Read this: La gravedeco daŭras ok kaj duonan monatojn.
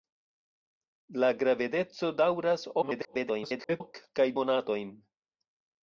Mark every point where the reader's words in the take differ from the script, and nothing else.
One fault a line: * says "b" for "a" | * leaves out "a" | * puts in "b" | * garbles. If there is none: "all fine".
* garbles
* leaves out "duonan"